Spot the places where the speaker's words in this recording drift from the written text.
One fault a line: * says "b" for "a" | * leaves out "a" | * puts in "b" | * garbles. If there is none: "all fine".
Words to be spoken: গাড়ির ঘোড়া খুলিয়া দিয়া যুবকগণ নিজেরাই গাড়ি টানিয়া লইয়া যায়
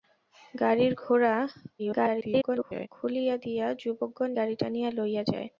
* garbles
* leaves out "নিজেরাই"